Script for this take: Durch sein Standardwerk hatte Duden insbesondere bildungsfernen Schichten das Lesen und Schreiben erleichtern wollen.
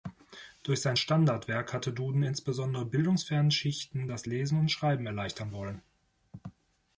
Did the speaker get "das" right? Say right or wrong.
right